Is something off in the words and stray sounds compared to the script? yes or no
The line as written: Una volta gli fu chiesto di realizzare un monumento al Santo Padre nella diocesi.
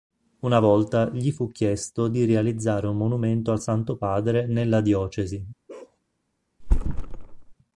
yes